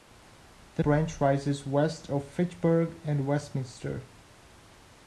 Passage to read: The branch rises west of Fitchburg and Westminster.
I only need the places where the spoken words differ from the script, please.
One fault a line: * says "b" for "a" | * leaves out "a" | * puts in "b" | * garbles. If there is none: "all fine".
all fine